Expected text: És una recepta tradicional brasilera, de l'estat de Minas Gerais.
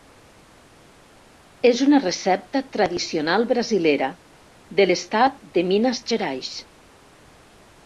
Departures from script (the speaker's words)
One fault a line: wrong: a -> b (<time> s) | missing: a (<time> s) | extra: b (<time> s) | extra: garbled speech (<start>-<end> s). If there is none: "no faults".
no faults